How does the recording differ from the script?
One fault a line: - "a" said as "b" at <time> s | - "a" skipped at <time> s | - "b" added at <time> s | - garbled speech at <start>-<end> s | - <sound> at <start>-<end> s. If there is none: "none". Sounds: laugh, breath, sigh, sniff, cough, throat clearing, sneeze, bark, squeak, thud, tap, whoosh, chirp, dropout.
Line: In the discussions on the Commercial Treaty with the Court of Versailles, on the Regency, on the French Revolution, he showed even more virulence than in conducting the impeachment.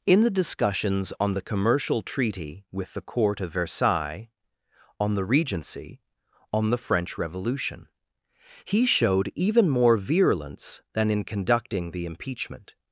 none